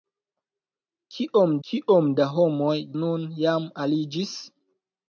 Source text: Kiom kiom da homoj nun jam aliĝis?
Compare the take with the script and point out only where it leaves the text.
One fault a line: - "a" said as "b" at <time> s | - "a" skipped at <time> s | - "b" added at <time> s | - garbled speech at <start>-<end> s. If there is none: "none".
none